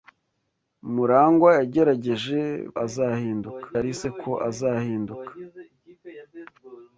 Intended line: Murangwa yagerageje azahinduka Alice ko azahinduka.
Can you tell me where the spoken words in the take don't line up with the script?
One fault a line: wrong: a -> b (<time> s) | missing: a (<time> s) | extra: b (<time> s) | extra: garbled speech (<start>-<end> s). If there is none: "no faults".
no faults